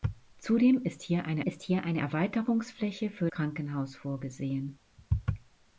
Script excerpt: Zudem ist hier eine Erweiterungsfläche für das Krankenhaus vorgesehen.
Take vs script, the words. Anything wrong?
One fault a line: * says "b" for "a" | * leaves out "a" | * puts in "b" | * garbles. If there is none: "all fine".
* puts in "ist hier eine"
* leaves out "das"